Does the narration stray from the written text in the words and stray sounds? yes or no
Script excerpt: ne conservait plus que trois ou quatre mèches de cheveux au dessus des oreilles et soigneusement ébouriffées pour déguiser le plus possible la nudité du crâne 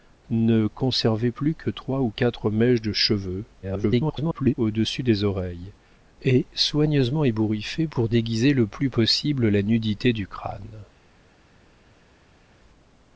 yes